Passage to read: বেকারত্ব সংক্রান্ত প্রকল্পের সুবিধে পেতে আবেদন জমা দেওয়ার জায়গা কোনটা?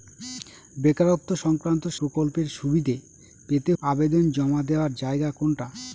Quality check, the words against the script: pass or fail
pass